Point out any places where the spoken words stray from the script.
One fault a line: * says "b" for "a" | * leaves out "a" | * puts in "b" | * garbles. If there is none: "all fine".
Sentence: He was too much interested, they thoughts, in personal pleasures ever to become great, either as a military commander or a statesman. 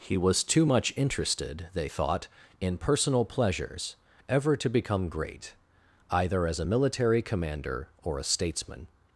* says "thought" for "thoughts"